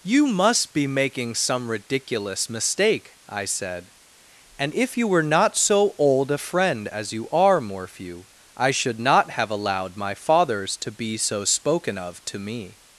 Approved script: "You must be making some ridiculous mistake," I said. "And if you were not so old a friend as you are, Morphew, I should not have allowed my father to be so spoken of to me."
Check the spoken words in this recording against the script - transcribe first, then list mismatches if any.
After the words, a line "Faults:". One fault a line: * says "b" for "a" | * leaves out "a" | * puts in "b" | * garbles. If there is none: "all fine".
"You must be making some ridiculous mistake," I said. "And if you were not so old a friend as you are, Morphew, I should not have allowed my fathers to be so spoken of to me."
Faults:
* says "fathers" for "father"